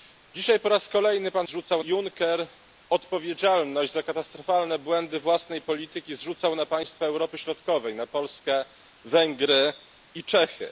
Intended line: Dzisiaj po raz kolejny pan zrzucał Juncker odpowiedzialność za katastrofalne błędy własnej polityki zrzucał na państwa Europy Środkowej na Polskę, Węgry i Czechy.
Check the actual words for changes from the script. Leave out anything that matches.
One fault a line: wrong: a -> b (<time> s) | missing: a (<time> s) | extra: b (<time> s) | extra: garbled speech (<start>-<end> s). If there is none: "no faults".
no faults